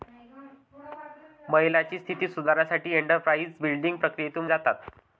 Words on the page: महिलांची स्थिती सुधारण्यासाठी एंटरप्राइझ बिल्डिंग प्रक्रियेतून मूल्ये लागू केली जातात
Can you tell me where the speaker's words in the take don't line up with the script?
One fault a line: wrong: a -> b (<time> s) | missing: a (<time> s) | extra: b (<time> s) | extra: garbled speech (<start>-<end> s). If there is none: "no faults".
missing: मूल्ये लागू केली (4.4 s)